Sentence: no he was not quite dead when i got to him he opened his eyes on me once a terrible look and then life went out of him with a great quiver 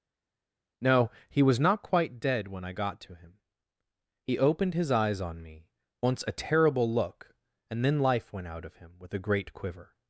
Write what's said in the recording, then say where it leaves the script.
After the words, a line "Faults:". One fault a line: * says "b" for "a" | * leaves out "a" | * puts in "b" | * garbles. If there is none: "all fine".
no he was not quite dead when i got to him he opened his eyes on me once a terrible look and then life went out of him with a great quiver
Faults:
all fine